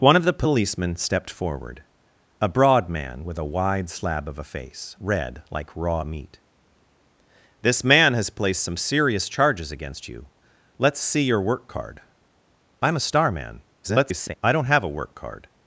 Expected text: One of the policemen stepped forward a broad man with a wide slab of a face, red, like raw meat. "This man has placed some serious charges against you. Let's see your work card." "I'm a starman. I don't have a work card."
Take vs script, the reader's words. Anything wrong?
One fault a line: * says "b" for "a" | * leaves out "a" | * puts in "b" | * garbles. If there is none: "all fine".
* garbles